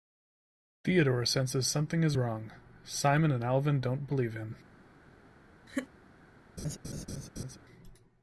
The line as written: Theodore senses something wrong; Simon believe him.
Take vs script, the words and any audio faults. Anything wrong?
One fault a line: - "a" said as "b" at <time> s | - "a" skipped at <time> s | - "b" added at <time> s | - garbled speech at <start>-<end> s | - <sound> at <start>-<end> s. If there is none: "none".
- "is" added at 2.0 s
- "and Alvin don't" added at 3.3 s
- laugh at 5.7-5.9 s
- laugh at 6.6-7.6 s